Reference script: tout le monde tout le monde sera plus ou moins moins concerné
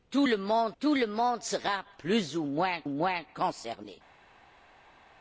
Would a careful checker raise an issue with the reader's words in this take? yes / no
no